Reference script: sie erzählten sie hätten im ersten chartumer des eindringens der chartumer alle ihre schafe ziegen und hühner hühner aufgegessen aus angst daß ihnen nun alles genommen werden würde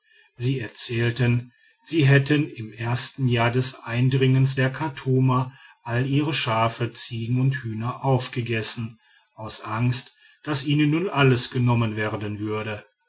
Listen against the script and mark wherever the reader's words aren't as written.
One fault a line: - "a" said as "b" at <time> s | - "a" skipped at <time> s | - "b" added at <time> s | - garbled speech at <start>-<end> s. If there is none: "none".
- "chartumer" said as "jahr" at 3.3 s
- "hühner" skipped at 8.0 s